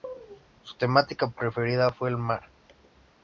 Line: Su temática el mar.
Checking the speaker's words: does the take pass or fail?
fail